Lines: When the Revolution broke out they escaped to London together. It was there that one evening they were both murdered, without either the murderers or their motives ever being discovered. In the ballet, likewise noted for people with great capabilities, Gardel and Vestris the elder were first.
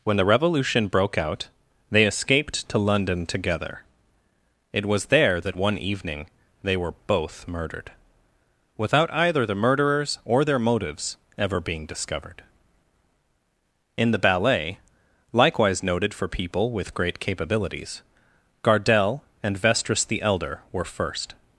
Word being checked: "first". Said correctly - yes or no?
yes